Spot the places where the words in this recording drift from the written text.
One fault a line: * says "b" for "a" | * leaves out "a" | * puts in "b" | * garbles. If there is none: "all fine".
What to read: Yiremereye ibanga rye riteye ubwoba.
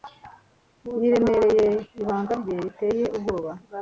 all fine